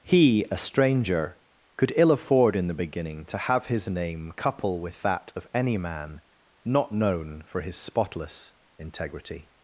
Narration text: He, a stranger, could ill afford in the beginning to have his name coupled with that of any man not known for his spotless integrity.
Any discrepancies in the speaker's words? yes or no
yes